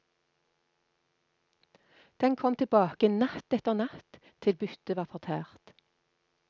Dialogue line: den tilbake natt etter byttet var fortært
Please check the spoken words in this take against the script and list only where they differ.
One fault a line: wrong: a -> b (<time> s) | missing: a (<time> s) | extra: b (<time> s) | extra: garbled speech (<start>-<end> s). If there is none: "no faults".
extra: kom (2.4 s)
extra: natt til (3.8 s)